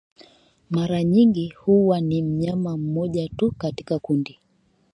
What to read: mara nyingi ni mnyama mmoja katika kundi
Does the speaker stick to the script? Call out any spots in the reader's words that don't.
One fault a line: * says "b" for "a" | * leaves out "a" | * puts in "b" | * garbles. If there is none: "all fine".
* puts in "huwa"
* puts in "tu"